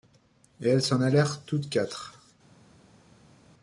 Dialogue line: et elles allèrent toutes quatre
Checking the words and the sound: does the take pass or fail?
fail